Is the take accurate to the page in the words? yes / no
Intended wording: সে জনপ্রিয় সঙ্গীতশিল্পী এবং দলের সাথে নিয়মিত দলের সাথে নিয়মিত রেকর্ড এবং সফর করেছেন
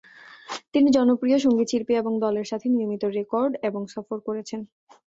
no